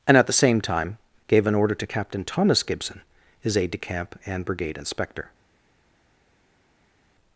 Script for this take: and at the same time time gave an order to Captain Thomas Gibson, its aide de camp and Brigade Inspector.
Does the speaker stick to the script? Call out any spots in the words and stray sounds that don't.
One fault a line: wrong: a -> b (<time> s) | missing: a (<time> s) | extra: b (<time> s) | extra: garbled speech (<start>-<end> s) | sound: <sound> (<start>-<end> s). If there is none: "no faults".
missing: time (1.0 s)
wrong: its -> his (3.4 s)